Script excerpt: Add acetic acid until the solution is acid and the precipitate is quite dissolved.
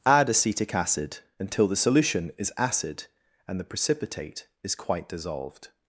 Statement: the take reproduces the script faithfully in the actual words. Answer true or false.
true